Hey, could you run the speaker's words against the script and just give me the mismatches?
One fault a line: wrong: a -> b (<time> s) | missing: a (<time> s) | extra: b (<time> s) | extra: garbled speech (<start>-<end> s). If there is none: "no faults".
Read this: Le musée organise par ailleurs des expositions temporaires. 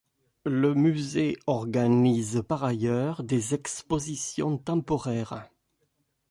no faults